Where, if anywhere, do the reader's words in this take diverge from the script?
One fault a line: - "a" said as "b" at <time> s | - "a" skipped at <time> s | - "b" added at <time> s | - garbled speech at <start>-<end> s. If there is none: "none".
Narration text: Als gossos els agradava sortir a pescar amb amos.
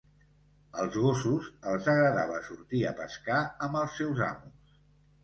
- "els seus" added at 3.8 s